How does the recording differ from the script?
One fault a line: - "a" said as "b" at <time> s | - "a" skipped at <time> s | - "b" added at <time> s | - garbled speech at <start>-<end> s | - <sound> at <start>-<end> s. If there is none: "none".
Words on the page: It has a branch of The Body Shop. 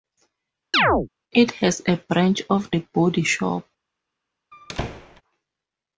- chirp at 0.7-1.1 s
- squeak at 4.5-5.2 s